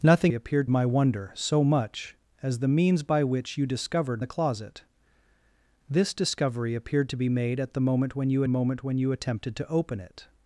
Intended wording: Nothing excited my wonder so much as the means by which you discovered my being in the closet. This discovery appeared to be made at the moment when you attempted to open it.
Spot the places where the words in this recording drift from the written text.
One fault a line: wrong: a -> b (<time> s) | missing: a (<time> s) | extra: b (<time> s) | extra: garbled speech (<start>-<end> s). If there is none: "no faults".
wrong: excited -> appeared (0.3 s)
missing: my being in (4.2 s)
extra: moment when you (8.5 s)